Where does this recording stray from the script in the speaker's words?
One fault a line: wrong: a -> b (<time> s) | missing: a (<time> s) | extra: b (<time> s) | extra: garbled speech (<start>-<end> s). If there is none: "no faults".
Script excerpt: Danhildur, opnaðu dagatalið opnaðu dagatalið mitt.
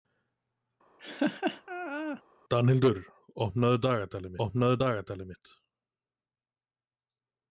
no faults